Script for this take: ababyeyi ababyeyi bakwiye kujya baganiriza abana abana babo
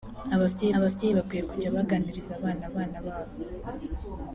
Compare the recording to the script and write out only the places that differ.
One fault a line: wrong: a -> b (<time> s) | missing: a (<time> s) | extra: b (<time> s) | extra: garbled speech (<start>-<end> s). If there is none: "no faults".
no faults